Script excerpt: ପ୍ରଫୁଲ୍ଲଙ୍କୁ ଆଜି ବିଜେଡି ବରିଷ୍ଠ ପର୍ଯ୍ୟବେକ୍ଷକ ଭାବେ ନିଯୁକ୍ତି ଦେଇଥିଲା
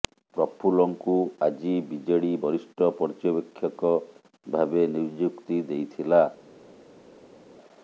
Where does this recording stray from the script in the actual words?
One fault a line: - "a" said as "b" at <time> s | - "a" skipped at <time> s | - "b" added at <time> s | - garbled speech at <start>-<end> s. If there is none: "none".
none